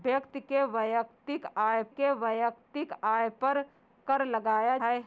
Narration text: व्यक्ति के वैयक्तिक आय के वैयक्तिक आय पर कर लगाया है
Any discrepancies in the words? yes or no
no